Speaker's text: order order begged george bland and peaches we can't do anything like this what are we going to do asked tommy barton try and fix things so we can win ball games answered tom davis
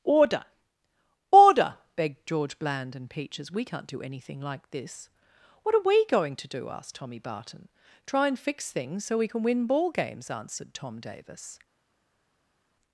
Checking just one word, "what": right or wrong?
right